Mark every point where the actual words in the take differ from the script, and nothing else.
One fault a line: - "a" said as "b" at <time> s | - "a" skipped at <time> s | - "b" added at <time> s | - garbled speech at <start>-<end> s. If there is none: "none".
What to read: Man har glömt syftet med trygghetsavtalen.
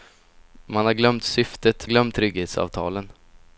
- "med" said as "glömt" at 1.8 s